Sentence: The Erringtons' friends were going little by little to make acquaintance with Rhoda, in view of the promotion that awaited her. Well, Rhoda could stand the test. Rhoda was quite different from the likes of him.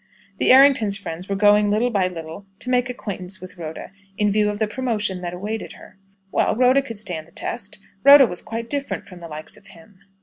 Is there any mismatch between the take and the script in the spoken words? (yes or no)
no